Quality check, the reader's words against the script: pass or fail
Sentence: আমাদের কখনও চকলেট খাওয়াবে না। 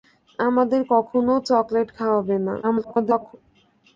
fail